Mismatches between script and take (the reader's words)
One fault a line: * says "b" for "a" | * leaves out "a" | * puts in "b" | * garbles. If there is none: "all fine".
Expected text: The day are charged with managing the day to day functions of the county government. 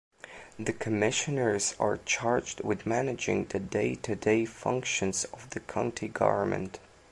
* says "commissioners" for "day"